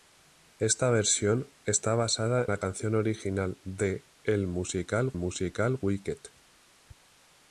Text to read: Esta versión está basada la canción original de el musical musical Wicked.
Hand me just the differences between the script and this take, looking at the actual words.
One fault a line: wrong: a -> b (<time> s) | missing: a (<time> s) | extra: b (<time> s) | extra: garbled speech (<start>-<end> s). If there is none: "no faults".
no faults